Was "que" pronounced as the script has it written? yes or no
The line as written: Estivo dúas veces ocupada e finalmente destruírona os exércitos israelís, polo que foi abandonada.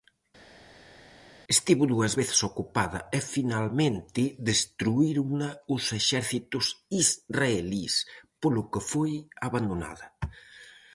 yes